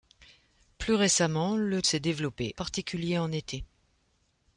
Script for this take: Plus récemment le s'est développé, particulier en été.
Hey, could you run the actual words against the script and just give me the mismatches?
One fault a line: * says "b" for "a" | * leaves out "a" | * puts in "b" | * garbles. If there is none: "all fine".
all fine